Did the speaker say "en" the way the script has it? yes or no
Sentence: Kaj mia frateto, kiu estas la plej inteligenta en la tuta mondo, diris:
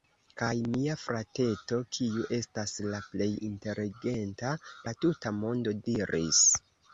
no